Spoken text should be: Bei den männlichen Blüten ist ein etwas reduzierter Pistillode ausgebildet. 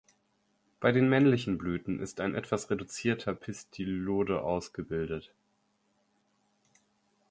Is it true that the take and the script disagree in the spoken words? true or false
false